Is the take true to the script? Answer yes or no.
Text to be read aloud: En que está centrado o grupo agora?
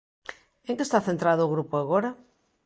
yes